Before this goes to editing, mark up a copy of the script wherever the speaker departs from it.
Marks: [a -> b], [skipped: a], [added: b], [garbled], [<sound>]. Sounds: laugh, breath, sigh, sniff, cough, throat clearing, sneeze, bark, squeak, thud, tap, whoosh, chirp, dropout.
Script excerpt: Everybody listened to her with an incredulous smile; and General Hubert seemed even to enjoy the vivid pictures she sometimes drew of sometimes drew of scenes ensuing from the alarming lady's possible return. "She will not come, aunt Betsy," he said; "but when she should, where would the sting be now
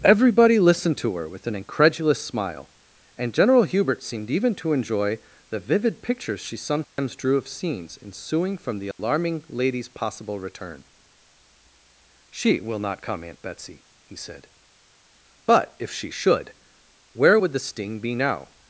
Everybody listened to her with an incredulous smile; and General Hubert seemed even to enjoy the vivid pictures she sometimes [dropout] drew of [skipped: sometimes drew of] scenes ensuing from the alarming [dropout] lady's possible return. "She will not come, aunt Betsy," he said; "but [when -> if] she should, where would the sting be now